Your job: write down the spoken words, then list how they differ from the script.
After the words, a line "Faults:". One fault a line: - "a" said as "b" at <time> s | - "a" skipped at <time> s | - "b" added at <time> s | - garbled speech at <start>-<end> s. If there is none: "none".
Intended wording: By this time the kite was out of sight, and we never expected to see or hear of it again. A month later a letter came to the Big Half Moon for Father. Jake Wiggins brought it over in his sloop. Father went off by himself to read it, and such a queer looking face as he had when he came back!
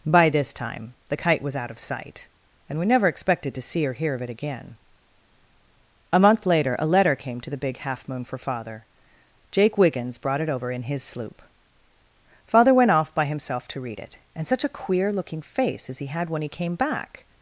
By this time the kite was out of sight, and we never expected to see or hear of it again. A month later a letter came to the Big Half Moon for Father. Jake Wiggins brought it over in his sloop. Father went off by himself to read it, and such a queer looking face as he had when he came back!
Faults:
none